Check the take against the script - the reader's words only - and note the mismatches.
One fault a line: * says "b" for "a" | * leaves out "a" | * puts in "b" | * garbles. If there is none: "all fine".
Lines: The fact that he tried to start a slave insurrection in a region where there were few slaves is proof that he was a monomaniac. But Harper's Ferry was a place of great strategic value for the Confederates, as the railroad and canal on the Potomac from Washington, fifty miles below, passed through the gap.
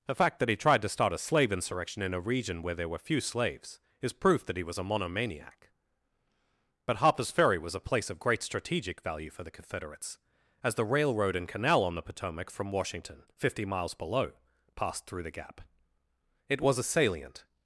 * puts in "It was a salient"